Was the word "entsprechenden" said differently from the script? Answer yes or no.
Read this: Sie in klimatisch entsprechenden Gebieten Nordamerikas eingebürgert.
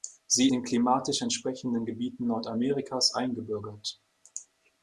no